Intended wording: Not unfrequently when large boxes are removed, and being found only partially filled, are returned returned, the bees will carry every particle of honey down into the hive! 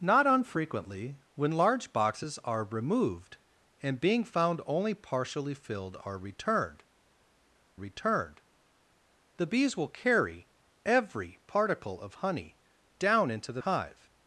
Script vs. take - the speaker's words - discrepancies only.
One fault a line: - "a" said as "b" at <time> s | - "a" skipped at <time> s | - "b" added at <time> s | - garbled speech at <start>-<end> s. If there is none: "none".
none